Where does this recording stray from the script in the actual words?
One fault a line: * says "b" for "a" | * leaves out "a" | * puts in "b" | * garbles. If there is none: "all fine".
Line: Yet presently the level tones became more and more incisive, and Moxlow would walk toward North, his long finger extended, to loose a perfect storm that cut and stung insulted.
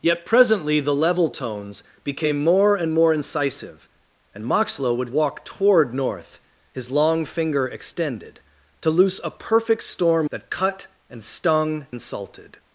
all fine